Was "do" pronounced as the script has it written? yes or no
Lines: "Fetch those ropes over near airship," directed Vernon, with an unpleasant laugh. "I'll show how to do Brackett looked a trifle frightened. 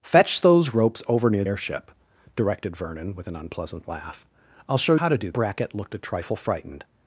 yes